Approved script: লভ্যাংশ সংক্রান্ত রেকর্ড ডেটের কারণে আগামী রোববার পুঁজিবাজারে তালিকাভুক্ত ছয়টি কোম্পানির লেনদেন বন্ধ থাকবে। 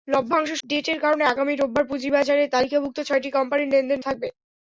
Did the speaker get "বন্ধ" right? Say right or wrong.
wrong